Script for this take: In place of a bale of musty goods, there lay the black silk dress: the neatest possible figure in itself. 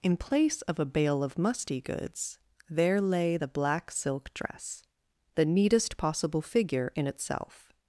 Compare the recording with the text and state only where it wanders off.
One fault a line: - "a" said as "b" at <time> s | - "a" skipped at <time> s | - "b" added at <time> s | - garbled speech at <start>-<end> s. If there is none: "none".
none